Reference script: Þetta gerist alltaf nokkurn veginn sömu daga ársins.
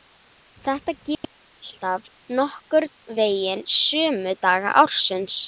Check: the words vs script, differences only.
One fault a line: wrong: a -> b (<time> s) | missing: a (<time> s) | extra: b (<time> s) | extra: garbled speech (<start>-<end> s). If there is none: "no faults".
no faults